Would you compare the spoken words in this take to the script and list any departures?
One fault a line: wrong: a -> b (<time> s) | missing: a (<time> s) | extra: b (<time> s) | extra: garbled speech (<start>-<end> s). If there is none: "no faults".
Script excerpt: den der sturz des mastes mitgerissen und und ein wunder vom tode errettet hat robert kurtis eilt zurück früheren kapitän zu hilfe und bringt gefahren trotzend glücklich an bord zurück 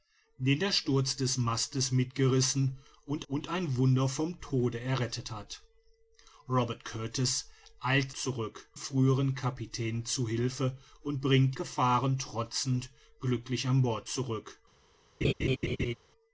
no faults